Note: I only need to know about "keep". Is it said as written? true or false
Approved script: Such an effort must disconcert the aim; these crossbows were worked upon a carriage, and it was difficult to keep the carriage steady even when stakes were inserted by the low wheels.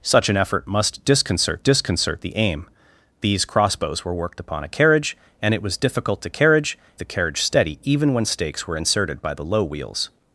false